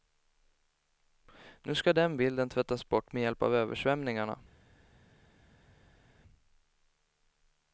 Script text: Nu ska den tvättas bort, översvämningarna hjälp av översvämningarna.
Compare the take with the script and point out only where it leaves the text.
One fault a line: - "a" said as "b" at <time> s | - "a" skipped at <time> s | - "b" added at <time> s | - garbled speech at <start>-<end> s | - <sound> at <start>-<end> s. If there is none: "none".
- "bilden" added at 2.2 s
- "översvämningarna" said as "med" at 3.1 s